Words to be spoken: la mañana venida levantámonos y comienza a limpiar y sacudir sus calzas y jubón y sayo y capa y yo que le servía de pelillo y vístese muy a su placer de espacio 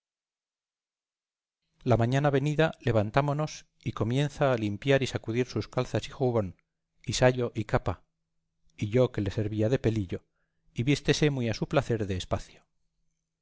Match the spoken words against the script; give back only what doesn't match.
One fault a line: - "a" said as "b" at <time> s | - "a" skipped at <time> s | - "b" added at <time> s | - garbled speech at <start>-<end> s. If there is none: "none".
none